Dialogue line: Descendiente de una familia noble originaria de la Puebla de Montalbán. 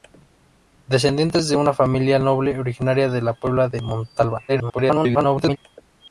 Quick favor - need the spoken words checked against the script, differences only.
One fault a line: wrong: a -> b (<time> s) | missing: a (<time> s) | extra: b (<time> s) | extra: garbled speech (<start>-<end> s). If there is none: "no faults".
extra: garbled speech (4.5-5.6 s)